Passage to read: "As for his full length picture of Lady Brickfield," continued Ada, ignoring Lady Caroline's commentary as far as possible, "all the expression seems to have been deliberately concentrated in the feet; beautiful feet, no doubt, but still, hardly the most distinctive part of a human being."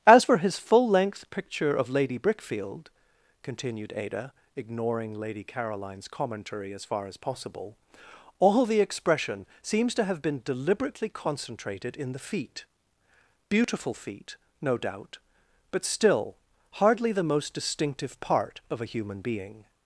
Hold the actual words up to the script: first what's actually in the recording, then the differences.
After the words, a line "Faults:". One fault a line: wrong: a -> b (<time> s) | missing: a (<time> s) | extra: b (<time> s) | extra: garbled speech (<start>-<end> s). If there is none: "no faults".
"As for his full length picture of Lady Brickfield," continued Ada, ignoring Lady Caroline's commentary as far as possible, "all the expression seems to have been deliberately concentrated in the feet; beautiful feet, no doubt, but still, hardly the most distinctive part of a human being."
Faults:
no faults